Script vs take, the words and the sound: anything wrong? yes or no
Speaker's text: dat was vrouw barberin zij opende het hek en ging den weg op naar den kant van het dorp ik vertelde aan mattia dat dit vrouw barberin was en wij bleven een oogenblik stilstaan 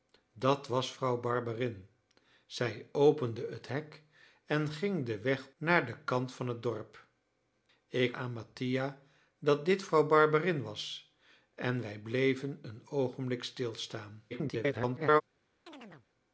yes